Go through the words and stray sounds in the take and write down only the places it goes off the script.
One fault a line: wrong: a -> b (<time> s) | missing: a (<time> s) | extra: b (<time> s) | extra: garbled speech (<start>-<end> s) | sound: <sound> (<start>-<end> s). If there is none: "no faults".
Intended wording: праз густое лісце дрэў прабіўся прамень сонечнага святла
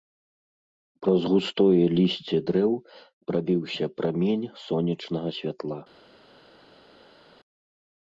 no faults